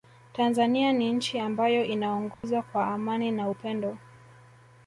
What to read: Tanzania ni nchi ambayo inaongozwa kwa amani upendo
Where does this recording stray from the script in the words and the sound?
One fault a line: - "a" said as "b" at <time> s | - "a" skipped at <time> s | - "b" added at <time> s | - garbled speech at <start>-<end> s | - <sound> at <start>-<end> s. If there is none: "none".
- dropout at 2.3-2.4 s
- "na" added at 3.3 s